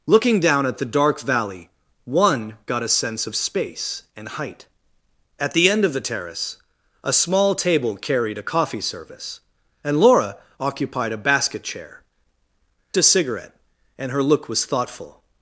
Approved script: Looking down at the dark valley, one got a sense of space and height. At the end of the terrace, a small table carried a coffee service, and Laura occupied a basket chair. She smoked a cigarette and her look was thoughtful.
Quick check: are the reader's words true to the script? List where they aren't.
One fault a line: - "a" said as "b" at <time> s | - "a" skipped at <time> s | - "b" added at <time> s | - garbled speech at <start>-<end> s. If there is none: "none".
- "She smoked" skipped at 12.0 s